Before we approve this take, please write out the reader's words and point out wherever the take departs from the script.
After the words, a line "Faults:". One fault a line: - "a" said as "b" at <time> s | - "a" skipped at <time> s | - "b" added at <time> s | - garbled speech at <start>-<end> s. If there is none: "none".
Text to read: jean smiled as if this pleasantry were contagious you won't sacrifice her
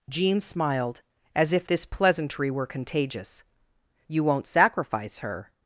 jean smiled as if this pleasantry were contagious you won't sacrifice her
Faults:
none